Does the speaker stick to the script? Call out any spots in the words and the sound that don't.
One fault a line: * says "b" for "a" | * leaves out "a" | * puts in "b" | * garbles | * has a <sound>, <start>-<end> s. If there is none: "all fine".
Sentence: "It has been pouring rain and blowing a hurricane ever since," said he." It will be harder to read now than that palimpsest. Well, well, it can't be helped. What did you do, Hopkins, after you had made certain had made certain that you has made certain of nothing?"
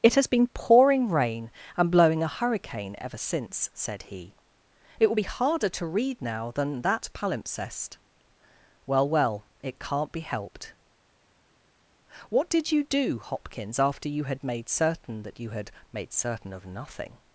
* leaves out "had made certain"
* says "had" for "has"